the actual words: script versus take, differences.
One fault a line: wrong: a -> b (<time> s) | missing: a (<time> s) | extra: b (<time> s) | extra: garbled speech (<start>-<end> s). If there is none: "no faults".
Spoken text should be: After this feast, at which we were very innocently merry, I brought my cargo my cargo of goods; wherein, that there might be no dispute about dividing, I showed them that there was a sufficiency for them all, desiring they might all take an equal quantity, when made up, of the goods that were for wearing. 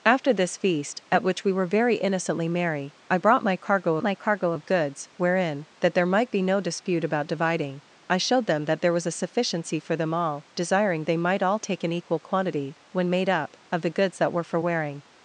no faults